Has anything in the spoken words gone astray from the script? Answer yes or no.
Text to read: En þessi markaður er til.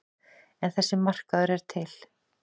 no